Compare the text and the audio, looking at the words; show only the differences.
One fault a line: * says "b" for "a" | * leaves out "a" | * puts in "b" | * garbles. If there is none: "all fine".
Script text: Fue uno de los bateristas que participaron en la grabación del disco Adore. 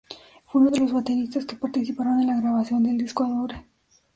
all fine